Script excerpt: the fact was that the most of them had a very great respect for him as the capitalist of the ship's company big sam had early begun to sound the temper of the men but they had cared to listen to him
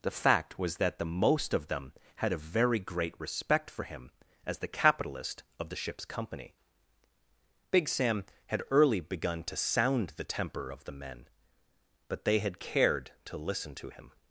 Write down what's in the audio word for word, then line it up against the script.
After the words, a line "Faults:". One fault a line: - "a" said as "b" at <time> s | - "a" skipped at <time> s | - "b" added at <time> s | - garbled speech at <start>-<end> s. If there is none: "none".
the fact was that the most of them had a very great respect for him as the capitalist of the ship's company big sam had early begun to sound the temper of the men but they had cared to listen to him
Faults:
none